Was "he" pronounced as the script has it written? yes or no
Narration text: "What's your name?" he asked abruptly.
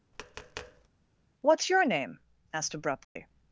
no